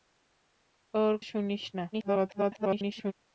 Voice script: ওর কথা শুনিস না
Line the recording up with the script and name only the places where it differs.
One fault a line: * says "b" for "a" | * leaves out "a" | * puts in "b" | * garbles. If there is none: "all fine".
* leaves out "কথা"
* garbles